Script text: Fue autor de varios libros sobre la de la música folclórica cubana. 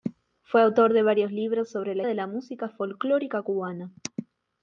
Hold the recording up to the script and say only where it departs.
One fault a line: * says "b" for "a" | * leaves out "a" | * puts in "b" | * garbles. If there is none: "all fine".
all fine